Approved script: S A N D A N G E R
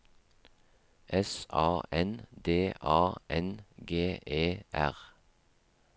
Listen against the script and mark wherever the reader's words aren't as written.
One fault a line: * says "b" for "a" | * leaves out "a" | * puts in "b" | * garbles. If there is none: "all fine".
all fine